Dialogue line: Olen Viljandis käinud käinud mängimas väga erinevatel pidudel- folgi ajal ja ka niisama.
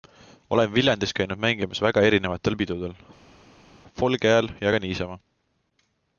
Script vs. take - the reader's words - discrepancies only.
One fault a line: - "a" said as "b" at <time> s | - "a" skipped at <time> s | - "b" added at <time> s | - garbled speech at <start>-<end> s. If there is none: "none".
- "käinud" skipped at 1.4 s